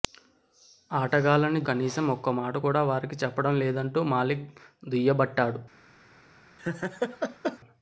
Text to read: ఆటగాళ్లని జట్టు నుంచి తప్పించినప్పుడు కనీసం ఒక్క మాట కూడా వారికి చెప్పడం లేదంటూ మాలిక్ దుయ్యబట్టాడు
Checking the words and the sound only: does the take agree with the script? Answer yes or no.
no